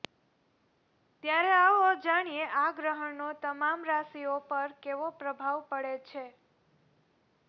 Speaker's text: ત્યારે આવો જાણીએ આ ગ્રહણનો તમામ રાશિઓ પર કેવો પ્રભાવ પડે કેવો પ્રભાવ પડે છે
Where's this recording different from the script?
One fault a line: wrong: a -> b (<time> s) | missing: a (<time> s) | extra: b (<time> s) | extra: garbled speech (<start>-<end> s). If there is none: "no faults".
missing: કેવો પ્રભાવ પડે (5.9 s)